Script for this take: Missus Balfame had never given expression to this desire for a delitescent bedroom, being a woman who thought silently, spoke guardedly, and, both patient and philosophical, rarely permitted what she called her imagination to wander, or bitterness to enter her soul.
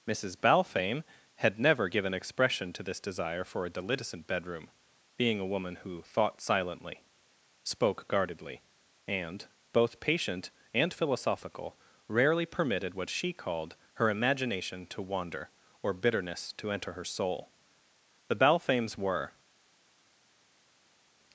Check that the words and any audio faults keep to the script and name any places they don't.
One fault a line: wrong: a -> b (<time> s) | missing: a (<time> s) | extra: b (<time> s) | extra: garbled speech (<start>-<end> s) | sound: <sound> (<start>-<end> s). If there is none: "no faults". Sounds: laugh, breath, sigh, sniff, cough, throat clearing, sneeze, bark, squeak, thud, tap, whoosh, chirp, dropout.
extra: The Balfames were (18.3 s)